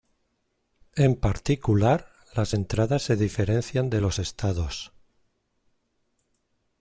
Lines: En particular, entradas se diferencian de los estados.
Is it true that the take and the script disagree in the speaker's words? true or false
true